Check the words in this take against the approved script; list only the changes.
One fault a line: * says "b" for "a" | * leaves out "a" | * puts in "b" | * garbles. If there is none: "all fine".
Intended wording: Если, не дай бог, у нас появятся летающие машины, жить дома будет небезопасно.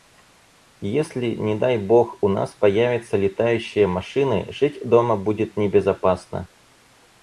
all fine